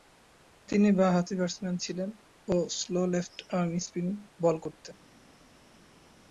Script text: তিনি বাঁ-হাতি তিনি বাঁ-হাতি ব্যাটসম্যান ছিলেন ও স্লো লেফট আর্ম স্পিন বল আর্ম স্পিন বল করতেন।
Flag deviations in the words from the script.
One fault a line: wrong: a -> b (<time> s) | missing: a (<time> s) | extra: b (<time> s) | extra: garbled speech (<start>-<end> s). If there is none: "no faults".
missing: তিনি বাঁ-হাতি (1.3 s)
missing: আর্ম স্পিন বল (4.6 s)